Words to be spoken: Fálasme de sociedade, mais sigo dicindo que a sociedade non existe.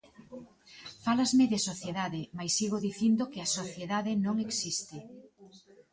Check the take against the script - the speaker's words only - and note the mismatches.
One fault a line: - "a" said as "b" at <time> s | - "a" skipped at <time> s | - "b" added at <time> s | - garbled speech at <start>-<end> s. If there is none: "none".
none